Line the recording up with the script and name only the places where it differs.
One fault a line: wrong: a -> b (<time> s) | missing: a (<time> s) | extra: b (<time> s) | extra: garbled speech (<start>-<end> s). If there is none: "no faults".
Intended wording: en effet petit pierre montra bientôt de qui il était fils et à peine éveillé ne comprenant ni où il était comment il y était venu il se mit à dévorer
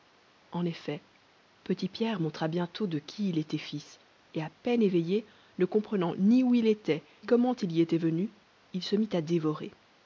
no faults